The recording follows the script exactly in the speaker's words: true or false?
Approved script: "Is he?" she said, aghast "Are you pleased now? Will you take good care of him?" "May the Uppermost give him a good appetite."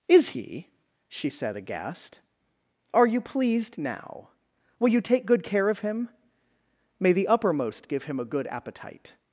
true